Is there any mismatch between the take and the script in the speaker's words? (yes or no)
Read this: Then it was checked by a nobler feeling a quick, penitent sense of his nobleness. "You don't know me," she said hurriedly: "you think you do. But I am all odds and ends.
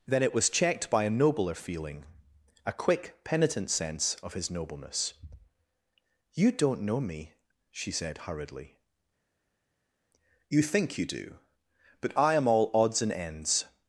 no